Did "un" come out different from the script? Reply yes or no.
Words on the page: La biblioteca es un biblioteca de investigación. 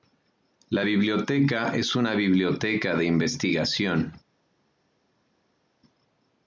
yes